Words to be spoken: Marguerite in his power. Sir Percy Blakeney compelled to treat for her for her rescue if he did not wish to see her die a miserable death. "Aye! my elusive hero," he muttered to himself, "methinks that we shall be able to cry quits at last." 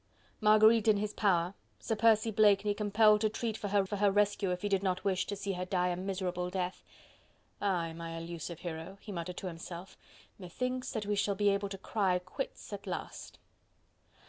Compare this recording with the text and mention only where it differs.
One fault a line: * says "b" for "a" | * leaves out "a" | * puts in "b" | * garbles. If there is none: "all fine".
all fine